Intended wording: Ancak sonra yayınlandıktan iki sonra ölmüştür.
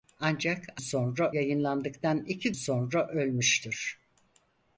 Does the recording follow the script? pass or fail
pass